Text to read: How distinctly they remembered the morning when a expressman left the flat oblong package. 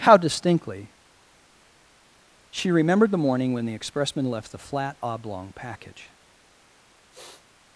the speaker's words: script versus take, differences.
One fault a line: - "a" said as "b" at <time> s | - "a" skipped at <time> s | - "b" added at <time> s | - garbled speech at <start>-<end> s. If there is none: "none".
- "they" said as "she" at 2.5 s
- "a" said as "the" at 3.7 s